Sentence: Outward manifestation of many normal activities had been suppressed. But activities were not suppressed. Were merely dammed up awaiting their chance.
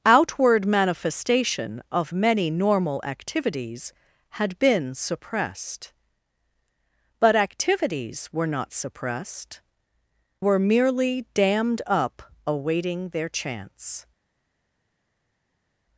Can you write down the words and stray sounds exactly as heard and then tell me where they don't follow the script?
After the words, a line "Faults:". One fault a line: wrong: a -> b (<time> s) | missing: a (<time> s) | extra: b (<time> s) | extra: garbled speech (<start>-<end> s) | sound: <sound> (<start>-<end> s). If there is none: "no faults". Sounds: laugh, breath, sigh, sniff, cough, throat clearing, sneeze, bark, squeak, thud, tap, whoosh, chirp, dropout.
Outward manifestation of many normal activities had been suppressed. But activities were not suppressed. Were merely dammed up awaiting their chance.
Faults:
no faults